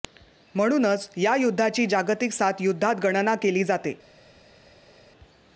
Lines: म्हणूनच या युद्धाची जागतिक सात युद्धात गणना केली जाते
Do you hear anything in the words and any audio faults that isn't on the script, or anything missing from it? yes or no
no